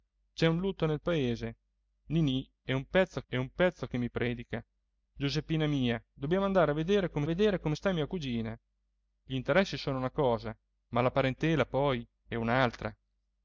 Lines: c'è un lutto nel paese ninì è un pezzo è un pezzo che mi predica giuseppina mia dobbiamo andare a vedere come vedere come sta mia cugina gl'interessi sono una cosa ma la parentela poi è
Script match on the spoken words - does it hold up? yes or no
yes